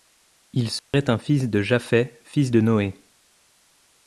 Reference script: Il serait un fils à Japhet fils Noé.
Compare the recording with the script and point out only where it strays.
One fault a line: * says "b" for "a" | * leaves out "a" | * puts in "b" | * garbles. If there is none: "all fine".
* says "de" for "à"
* puts in "de"